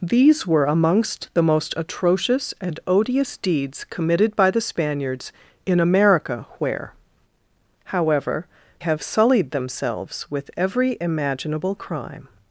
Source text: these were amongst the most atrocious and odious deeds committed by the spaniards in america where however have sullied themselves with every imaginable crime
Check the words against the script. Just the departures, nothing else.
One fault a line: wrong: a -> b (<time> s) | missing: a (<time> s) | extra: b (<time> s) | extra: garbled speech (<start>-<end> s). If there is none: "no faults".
no faults